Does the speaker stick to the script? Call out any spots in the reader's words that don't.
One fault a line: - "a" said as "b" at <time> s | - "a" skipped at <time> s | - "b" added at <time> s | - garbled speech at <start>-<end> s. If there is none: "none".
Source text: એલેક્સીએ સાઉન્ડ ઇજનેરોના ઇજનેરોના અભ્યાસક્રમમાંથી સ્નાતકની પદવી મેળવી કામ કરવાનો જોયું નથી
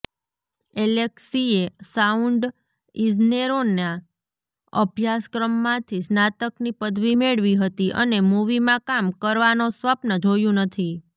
- "ઇજનેરોના" skipped at 3.9 s
- "હતી અને મૂવીમાં" added at 7.6 s
- "સ્વપ્ન" added at 9.7 s